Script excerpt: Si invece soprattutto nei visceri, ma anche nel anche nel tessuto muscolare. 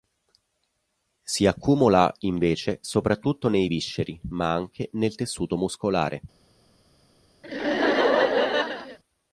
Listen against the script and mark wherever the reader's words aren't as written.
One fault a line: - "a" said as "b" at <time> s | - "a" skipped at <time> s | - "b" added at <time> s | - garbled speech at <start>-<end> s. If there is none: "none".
- "accumula" added at 1.4 s
- "anche nel" skipped at 5.2 s